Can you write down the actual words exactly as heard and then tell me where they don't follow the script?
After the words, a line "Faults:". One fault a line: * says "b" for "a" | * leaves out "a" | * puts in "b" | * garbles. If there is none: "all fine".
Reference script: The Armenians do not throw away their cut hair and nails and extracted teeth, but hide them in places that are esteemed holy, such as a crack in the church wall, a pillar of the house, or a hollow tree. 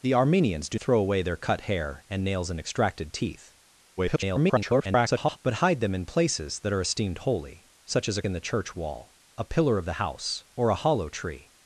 The Armenians do throw away their cut hair and nails and extracted teeth, [garbled] but hide them in places that are esteemed holy, such as a in the church wall, a pillar of the house, or a hollow tree.
Faults:
* leaves out "not"
* garbles
* leaves out "crack"